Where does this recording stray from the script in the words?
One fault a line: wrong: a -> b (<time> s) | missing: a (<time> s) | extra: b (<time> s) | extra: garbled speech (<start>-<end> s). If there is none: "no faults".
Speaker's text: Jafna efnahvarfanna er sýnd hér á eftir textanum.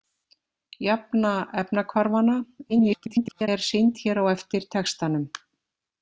extra: garbled speech (2.7-3.5 s)